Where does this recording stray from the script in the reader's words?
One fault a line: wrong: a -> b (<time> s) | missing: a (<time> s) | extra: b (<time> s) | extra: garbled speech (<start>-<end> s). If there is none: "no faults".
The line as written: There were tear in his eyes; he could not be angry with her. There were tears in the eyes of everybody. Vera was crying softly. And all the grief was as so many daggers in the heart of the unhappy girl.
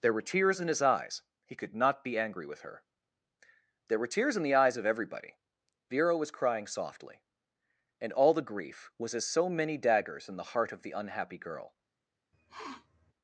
wrong: tear -> tears (0.2 s)